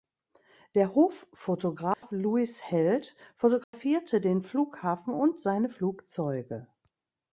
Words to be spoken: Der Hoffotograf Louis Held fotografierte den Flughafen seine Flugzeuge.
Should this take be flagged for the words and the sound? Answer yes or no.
yes